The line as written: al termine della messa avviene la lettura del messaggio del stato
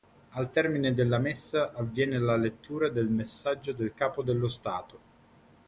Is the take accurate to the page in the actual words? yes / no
no